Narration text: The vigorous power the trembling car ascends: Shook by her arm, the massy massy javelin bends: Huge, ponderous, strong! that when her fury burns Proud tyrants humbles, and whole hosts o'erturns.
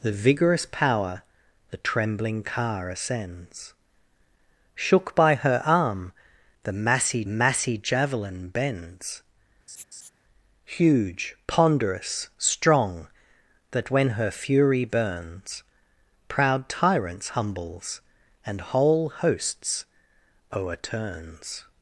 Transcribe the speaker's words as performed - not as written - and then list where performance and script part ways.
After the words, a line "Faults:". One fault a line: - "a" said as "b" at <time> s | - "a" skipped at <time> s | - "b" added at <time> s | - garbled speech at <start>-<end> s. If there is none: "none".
The vigorous power the trembling car ascends: Shook by her arm, the massy massy javelin bends: Huge, ponderous, strong! that when her fury burns Proud tyrants humbles, and whole hosts o'erturns.
Faults:
none